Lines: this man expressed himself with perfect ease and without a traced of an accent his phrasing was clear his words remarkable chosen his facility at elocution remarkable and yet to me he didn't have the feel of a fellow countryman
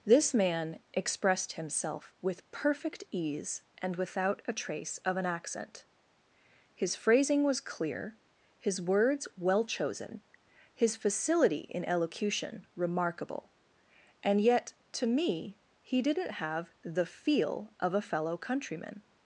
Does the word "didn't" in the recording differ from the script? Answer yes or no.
no